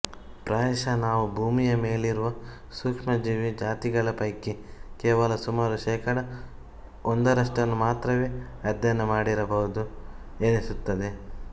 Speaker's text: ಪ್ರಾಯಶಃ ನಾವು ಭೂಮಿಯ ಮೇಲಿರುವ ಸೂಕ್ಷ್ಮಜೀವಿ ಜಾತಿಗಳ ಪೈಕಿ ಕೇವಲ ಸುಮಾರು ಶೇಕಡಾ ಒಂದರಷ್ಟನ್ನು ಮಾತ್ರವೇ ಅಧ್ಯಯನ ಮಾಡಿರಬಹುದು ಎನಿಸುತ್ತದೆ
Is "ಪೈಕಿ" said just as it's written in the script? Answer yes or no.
yes